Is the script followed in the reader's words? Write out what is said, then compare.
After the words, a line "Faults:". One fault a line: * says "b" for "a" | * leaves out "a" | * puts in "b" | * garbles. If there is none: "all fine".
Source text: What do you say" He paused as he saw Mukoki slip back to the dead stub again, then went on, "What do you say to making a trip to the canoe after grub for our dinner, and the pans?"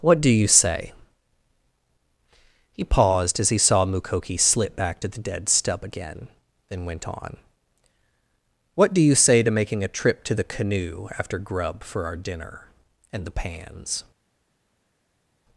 What do you say" He paused as he saw Mukoki slip back to the dead stub again, then went on, "What do you say to making a trip to the canoe after grub for our dinner, and the pans?"
Faults:
all fine